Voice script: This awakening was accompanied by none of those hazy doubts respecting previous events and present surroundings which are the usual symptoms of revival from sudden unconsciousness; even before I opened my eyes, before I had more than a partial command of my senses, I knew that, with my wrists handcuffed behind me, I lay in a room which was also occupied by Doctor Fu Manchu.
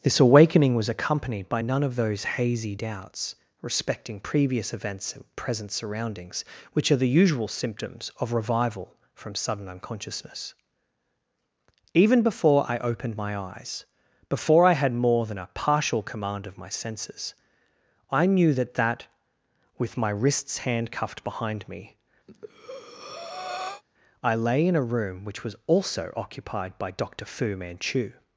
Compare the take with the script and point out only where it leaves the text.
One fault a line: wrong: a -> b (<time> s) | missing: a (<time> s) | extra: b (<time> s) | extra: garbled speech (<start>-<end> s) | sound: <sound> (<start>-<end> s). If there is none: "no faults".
extra: that (18.7 s)
sound: breath (22.3-23.8 s)